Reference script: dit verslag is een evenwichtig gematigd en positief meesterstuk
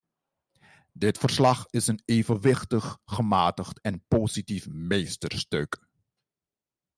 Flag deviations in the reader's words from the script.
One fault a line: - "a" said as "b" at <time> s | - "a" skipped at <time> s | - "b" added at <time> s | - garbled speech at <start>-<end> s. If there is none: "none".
none